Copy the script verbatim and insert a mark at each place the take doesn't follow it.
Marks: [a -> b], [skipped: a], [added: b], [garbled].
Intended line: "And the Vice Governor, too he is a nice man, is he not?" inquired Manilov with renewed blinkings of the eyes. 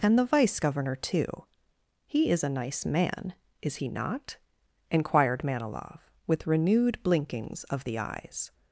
"And the Vice Governor, too he is a nice man, is he not?" inquired Manilov with renewed blinkings of the eyes.